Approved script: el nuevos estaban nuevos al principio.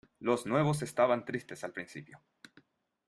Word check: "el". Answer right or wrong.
wrong